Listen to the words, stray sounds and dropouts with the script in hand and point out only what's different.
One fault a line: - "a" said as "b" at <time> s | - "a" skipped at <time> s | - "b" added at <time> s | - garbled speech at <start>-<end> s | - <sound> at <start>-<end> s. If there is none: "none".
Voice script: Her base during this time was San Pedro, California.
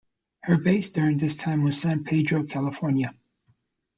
none